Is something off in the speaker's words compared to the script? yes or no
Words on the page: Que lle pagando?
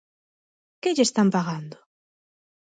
yes